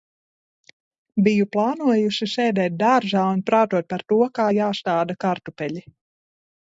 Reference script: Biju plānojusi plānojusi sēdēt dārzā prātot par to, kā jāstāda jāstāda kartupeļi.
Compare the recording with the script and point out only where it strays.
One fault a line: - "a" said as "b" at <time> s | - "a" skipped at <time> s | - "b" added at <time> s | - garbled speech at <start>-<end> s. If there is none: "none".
- "plānojusi" skipped at 2.3 s
- "un" added at 3.3 s
- "jāstāda" skipped at 5.2 s